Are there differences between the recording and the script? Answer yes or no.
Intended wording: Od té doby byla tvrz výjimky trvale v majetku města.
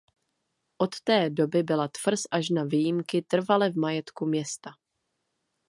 yes